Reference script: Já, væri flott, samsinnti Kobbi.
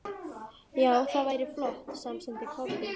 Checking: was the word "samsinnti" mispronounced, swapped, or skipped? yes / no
no